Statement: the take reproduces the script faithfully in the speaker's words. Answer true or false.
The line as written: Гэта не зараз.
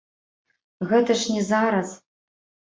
false